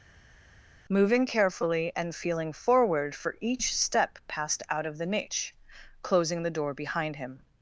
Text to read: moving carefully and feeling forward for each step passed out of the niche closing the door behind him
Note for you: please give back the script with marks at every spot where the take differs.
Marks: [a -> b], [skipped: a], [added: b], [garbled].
moving carefully and feeling forward for each step passed out of the niche closing the door behind him